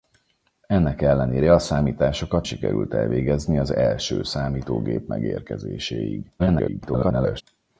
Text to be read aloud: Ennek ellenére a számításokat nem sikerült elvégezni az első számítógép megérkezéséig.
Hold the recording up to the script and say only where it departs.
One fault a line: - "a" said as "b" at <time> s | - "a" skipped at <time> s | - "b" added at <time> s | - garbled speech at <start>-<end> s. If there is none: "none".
- "nem" skipped at 2.5 s
- garbled speech at 6.4-7.4 s